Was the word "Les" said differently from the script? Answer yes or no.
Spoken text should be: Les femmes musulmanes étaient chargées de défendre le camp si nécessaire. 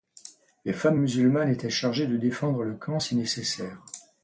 no